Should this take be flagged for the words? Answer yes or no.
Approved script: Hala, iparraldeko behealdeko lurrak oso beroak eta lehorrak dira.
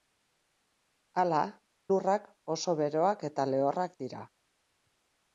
yes